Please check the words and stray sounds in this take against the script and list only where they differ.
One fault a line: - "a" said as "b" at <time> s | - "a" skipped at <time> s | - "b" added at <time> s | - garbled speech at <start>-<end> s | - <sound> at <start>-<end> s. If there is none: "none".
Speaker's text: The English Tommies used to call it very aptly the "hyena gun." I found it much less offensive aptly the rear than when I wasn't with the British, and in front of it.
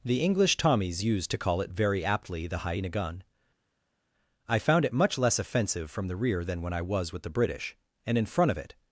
- "aptly" said as "from" at 5.9 s
- "wasn't" said as "was" at 6.8 s